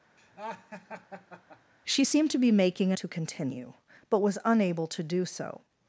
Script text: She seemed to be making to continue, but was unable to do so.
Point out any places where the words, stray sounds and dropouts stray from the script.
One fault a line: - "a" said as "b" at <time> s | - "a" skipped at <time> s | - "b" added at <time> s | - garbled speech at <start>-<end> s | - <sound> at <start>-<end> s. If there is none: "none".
- laugh at 0.2-1.7 s